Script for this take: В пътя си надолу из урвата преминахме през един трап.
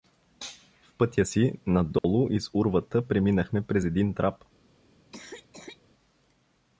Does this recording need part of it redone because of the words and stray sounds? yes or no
yes